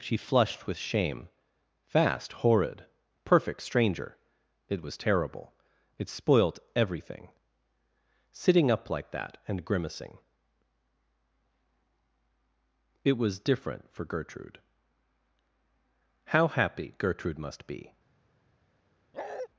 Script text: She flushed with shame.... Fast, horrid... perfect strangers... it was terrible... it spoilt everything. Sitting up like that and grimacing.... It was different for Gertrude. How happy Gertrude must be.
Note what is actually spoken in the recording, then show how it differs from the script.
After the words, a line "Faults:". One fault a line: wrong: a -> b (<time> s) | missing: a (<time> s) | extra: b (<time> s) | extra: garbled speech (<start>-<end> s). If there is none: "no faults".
She flushed with shame.... Fast, horrid... perfect stranger... it was terrible... it spoilt everything. Sitting up like that and grimacing.... It was different for Gertrude. How happy Gertrude must be.
Faults:
wrong: strangers -> stranger (3.6 s)